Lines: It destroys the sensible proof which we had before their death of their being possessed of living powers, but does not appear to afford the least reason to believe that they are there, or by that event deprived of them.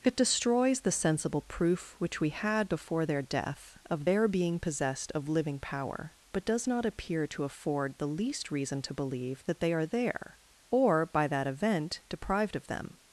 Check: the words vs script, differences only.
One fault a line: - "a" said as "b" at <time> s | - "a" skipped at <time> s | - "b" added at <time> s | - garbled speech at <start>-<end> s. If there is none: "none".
- "powers" said as "power" at 5.6 s